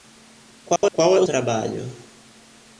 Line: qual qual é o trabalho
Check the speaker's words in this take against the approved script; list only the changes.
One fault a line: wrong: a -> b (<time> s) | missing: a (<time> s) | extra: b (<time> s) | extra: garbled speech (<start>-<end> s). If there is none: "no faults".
no faults